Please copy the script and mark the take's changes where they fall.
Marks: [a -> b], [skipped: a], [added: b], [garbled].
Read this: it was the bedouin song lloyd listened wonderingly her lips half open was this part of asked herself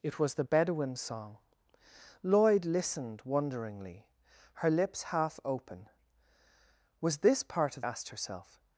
it was the bedouin song lloyd listened wonderingly her lips half open was this part of asked herself